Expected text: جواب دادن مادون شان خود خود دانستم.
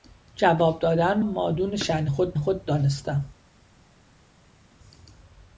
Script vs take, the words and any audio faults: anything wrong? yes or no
no